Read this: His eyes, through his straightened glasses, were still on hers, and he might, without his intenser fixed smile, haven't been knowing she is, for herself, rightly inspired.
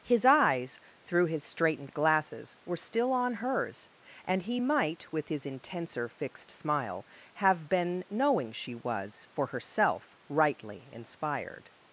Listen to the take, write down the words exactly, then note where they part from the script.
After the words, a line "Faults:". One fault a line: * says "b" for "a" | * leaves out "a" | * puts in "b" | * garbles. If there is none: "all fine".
His eyes, through his straightened glasses, were still on hers, and he might, with his intenser fixed smile, have been knowing she was, for herself, rightly inspired.
Faults:
* says "with" for "without"
* says "have" for "haven't"
* says "was" for "is"